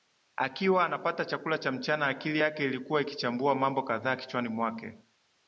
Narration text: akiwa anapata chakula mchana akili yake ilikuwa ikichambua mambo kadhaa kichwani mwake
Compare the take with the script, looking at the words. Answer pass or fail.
fail